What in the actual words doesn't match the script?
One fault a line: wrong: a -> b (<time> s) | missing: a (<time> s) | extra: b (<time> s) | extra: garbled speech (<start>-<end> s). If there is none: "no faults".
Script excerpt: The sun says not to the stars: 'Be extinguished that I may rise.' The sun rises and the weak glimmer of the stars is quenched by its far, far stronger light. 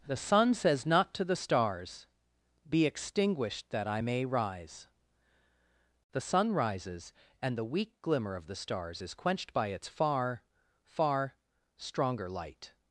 no faults